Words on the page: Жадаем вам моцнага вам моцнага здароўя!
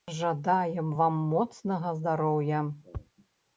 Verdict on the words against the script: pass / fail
fail